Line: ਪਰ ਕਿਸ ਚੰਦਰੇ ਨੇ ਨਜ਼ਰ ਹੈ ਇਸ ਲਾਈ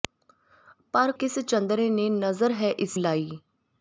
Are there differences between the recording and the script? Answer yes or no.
no